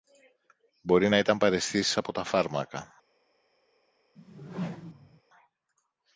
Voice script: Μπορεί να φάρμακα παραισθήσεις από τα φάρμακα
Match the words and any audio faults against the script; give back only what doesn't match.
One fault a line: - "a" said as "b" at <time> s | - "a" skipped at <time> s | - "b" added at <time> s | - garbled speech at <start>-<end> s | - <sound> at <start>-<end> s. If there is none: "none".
- "φάρμακα" said as "ήταν" at 1.2 s
- whoosh at 4.2-5.2 s